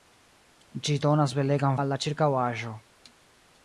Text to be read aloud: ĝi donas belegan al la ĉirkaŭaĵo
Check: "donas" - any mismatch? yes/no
no